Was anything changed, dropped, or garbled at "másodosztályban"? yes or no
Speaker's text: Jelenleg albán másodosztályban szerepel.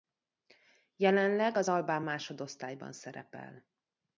no